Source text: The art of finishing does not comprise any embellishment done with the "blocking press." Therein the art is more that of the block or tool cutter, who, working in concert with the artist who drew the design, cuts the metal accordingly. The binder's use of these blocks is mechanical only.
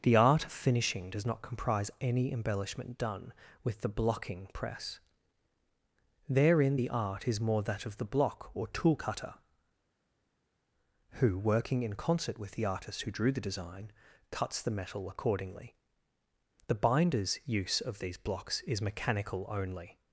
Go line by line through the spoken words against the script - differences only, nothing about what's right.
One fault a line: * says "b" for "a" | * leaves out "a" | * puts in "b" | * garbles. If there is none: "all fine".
all fine